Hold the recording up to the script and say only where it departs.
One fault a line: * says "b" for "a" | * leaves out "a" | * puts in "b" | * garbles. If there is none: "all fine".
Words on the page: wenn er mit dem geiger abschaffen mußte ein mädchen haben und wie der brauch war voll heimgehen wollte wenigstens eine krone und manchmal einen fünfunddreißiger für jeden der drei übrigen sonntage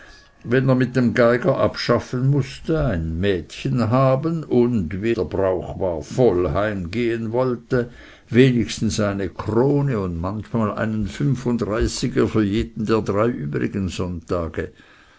all fine